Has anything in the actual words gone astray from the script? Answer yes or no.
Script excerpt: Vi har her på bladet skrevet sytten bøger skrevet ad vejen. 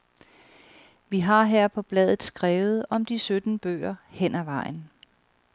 yes